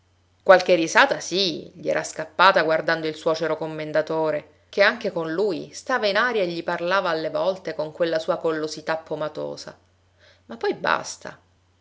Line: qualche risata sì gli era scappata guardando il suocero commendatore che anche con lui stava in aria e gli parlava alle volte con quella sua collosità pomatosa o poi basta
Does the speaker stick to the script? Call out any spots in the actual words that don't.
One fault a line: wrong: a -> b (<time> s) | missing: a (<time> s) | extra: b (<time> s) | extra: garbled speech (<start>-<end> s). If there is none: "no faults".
wrong: o -> ma (10.5 s)